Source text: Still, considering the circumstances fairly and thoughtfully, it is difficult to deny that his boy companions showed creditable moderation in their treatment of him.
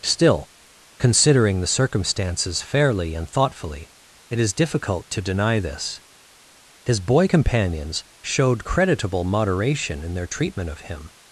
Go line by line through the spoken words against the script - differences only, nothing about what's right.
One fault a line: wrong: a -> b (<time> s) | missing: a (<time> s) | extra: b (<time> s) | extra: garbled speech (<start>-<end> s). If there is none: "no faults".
wrong: that -> this (5.6 s)